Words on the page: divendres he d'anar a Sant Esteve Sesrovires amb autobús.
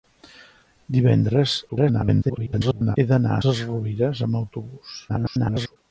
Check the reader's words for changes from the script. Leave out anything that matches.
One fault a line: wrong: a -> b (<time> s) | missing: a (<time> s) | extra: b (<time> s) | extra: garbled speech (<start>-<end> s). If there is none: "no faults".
extra: garbled speech (1.7-3.0 s)
missing: a Sant Esteve (3.4 s)
extra: garbled speech (5.1-5.8 s)